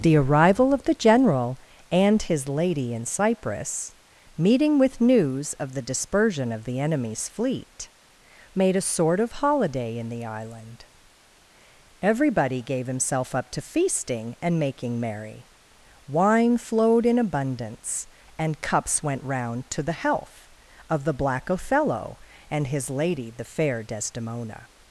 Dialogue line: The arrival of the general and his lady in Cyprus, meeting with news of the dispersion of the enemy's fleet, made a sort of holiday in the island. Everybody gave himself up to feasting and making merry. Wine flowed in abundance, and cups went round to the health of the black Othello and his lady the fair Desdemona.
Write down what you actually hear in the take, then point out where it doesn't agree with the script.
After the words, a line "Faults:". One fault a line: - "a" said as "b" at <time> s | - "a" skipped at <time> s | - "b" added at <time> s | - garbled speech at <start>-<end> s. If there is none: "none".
The arrival of the general and his lady in Cyprus, meeting with news of the dispersion of the enemy's fleet, made a sort of holiday in the island. Everybody gave himself up to feasting and making merry. Wine flowed in abundance, and cups went round to the health of the black Othello and his lady the fair Desdemona.
Faults:
none